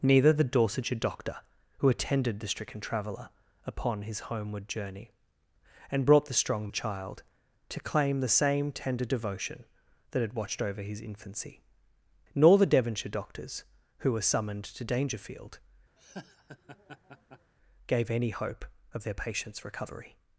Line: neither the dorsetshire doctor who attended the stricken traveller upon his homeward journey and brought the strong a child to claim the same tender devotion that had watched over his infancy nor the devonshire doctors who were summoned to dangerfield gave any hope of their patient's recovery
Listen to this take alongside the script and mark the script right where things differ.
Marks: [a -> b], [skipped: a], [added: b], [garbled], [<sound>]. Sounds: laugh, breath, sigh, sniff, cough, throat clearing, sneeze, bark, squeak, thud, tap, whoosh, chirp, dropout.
neither the dorsetshire doctor who attended the stricken traveller upon his homeward journey and brought the strong a child to claim the same tender devotion that had watched over his infancy nor the devonshire doctors who were summoned to dangerfield [laugh] gave any hope of their patient's recovery